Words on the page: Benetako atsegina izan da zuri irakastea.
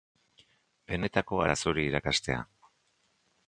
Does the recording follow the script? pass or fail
fail